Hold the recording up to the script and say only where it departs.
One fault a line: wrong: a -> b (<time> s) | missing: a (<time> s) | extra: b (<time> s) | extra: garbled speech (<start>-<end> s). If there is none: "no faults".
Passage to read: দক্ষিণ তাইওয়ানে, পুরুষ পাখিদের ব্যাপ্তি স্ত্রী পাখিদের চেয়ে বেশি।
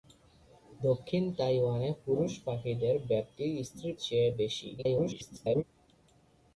missing: পাখিদের (3.9 s)
extra: garbled speech (4.8-5.6 s)